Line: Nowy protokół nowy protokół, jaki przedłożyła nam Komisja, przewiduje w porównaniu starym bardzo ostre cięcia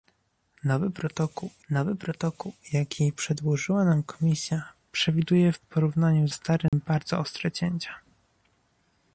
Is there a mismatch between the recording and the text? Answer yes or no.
no